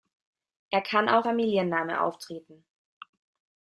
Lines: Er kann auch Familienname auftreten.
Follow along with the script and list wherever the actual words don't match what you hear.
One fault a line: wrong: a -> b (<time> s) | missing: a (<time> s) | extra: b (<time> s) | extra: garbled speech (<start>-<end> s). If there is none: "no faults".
no faults